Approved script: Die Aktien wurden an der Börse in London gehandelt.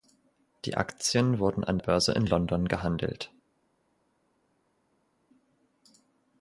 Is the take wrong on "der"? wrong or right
wrong